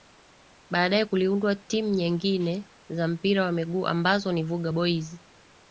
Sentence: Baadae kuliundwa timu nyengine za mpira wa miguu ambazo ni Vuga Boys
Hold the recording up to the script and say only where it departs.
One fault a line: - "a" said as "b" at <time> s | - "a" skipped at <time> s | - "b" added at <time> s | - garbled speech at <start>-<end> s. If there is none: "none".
none